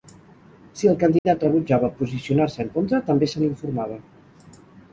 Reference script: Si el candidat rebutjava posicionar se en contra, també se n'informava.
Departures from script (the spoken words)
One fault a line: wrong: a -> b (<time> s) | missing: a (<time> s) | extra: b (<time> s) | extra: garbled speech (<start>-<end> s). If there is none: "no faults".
no faults